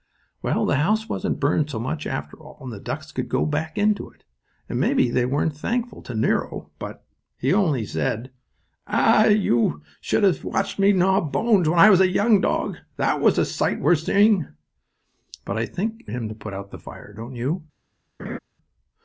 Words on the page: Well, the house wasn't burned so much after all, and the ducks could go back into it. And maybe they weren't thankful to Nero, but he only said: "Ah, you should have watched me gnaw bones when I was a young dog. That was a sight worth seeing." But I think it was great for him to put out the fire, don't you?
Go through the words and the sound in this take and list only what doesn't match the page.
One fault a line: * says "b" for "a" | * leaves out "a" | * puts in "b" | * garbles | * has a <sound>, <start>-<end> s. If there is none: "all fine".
* leaves out "was great for"
* has a laugh, 18.2-18.4 s